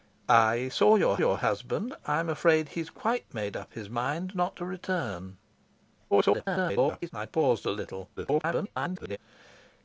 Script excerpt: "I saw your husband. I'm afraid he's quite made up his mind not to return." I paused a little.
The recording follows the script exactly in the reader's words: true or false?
false